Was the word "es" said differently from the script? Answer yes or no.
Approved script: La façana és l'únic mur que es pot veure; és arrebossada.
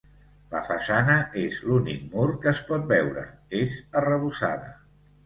no